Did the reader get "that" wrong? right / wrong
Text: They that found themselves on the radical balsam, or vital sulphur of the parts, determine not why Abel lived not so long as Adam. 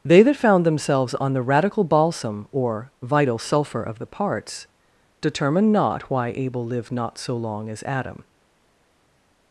right